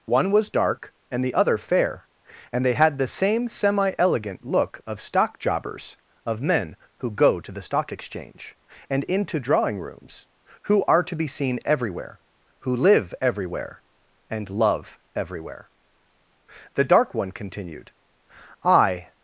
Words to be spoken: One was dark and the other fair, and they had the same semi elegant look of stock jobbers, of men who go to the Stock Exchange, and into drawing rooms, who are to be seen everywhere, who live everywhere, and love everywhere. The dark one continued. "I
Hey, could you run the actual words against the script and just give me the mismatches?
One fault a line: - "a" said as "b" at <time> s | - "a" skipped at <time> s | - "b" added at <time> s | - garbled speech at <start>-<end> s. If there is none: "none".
none